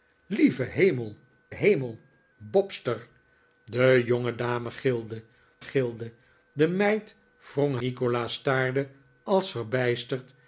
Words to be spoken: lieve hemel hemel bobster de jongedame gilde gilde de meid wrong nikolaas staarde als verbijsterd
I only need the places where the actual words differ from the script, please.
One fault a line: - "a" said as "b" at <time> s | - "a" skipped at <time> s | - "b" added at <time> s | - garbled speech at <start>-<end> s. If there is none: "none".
none